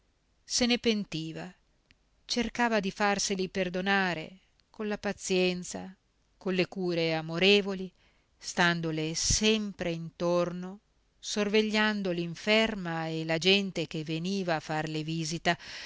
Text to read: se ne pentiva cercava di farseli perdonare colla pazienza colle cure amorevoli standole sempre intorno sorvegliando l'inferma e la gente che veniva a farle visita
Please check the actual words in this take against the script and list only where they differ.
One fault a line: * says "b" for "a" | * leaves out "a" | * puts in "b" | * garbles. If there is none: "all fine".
all fine